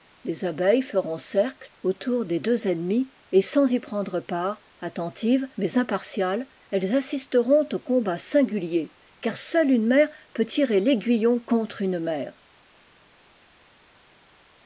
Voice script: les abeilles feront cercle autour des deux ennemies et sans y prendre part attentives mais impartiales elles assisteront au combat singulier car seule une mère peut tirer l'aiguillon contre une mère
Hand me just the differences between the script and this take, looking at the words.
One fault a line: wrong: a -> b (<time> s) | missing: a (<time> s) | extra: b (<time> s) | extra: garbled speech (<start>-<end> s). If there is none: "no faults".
no faults